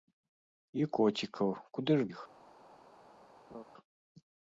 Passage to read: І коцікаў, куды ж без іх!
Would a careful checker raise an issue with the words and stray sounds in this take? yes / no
yes